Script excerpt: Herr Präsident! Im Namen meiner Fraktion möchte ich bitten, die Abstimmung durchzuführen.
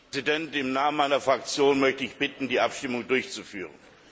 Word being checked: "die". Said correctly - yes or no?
yes